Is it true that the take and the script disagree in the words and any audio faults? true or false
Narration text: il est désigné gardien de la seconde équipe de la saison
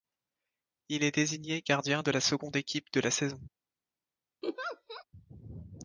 true